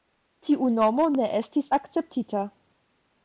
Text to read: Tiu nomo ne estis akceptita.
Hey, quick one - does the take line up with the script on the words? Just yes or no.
yes